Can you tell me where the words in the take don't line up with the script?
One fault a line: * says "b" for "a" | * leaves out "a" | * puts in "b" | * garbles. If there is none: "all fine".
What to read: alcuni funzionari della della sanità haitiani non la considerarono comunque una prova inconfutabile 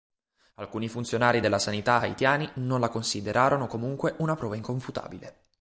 * leaves out "della"